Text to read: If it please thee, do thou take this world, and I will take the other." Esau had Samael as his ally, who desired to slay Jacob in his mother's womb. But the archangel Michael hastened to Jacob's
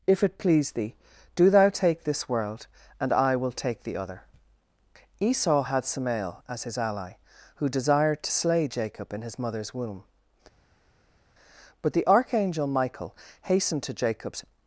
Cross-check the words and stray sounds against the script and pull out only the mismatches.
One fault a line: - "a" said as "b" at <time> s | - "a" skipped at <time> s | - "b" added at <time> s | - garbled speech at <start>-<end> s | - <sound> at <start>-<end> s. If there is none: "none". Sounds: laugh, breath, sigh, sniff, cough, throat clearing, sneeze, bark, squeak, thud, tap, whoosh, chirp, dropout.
none